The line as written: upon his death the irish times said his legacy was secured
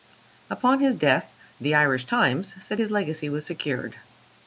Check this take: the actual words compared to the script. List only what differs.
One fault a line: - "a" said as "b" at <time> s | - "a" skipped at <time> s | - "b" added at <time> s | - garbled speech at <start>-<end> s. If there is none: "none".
none